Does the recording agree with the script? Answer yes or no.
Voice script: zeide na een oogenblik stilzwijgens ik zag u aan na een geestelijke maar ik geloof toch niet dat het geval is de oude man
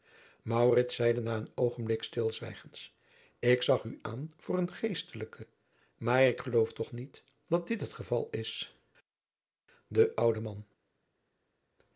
no